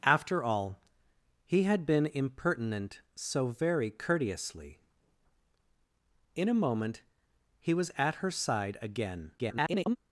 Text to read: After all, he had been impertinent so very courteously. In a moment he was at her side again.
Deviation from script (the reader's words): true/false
true